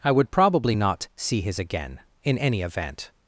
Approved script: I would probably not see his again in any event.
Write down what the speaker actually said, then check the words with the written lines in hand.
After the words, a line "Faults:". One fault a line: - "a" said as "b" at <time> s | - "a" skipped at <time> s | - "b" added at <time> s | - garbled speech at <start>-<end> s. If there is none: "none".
I would probably not see his again in any event.
Faults:
none